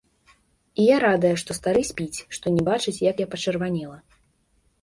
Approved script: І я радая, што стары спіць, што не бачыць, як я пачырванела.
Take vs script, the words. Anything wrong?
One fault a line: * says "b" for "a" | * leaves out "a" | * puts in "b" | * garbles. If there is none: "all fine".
all fine